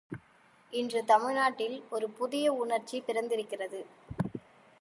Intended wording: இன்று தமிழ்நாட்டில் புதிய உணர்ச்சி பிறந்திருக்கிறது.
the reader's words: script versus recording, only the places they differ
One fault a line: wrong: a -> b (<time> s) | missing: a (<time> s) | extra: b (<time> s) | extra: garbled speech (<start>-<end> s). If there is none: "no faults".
extra: ஒரு (1.9 s)